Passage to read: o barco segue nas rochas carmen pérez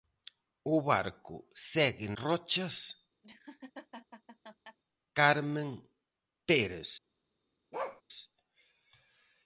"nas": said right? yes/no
no